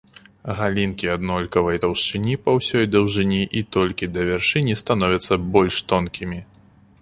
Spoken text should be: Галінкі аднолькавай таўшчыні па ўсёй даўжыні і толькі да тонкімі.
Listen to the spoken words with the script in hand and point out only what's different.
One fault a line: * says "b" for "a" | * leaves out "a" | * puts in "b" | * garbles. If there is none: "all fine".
* puts in "вяршыні становяцца больш"